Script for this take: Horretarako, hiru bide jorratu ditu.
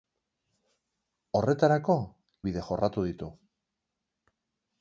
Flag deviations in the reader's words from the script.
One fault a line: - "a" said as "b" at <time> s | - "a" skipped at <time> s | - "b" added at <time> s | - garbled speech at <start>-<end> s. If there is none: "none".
- "hiru" skipped at 2.0 s